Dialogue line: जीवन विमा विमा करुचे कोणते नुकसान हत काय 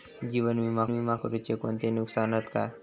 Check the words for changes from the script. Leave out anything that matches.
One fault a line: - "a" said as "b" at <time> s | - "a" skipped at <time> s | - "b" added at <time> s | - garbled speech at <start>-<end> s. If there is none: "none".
none